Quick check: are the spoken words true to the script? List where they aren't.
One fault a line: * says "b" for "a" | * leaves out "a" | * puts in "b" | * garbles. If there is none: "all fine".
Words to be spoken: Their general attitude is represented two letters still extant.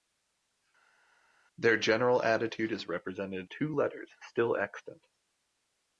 all fine